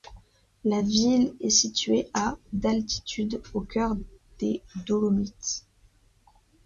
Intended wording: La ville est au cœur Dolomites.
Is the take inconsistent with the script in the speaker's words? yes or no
yes